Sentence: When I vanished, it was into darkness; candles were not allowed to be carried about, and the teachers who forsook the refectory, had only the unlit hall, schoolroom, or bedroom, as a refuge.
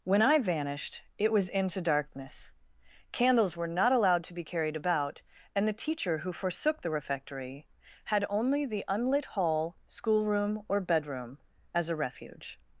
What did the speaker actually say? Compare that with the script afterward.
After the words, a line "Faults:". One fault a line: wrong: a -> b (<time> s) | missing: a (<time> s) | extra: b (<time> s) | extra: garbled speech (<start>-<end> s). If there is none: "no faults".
When I vanished, it was into darkness; candles were not allowed to be carried about, and the teacher who forsook the refectory, had only the unlit hall, schoolroom, or bedroom, as a refuge.
Faults:
wrong: teachers -> teacher (5.8 s)